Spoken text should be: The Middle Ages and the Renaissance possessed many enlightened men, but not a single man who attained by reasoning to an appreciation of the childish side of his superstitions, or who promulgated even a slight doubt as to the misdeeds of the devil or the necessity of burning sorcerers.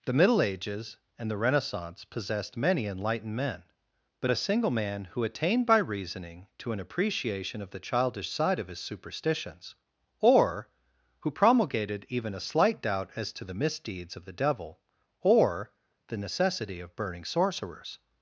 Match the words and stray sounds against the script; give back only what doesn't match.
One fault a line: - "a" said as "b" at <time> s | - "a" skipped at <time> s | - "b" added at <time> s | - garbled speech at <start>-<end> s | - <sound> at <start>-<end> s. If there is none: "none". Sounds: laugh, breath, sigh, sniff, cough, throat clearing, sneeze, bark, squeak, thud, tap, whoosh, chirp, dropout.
- "not" skipped at 4.3 s